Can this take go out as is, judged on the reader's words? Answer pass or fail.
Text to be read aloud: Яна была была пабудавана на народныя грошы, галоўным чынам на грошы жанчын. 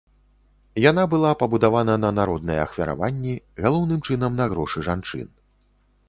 fail